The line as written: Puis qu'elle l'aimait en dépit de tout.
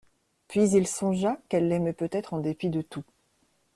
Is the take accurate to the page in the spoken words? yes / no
no